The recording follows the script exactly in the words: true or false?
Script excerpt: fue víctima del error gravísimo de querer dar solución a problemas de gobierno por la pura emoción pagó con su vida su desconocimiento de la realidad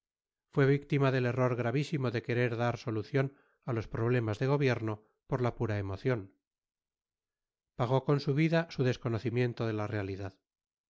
false